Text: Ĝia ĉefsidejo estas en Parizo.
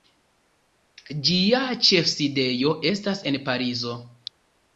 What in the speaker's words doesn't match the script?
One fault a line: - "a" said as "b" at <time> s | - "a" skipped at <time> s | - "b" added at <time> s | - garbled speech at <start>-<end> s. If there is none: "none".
none